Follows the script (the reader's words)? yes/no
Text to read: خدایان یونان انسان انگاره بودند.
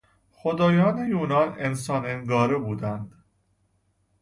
yes